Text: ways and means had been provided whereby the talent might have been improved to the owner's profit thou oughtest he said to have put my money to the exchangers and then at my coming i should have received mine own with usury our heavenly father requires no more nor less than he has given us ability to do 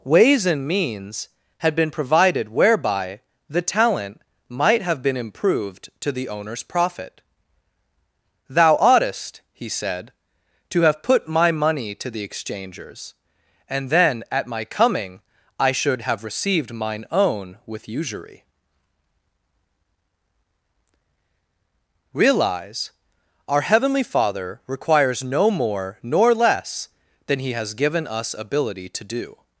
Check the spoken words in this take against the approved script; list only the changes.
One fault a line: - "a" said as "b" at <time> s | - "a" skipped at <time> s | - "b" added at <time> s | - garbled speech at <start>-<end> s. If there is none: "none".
- "realize" added at 22.1 s